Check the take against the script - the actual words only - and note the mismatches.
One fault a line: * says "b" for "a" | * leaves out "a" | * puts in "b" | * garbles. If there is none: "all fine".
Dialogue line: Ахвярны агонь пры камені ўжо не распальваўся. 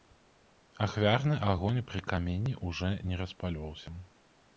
all fine